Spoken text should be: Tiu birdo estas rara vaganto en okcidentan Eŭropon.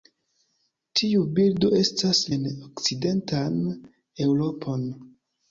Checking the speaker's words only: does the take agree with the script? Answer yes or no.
no